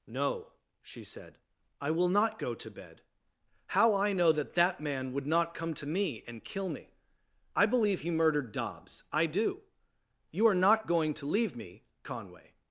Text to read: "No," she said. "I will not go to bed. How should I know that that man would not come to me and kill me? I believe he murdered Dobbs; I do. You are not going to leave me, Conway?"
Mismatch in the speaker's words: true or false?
true